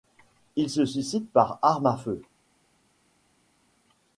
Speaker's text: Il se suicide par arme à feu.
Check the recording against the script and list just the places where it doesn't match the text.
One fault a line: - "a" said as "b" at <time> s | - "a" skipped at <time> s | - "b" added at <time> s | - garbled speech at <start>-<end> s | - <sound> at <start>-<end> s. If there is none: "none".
none